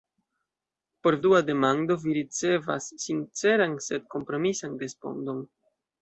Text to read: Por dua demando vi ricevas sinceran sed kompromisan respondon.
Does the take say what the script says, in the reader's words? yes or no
yes